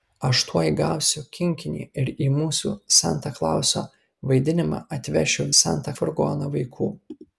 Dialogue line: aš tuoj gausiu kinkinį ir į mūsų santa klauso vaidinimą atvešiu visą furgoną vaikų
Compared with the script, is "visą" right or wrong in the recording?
wrong